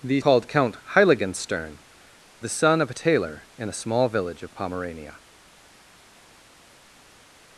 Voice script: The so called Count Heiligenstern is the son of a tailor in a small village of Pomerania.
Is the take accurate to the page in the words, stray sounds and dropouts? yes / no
no